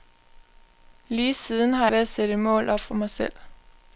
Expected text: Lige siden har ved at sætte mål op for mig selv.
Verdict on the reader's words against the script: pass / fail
pass